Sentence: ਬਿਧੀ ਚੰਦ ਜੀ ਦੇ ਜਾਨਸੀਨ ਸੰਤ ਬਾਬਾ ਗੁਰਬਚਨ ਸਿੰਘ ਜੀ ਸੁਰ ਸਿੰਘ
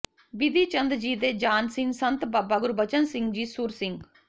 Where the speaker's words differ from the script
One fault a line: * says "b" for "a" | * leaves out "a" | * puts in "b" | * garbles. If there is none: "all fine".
all fine